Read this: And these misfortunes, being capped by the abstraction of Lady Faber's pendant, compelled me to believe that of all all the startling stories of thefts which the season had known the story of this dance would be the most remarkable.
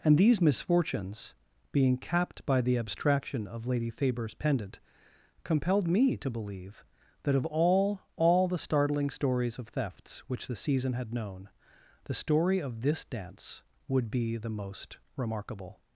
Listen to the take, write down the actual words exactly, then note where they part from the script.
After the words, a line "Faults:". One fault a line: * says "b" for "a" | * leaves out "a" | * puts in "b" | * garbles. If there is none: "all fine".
And these misfortunes, being capped by the abstraction of Lady Faber's pendant, compelled me to believe that of all all the startling stories of thefts which the season had known the story of this dance would be the most remarkable.
Faults:
all fine